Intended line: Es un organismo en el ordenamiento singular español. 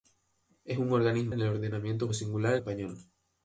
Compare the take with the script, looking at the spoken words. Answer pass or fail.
pass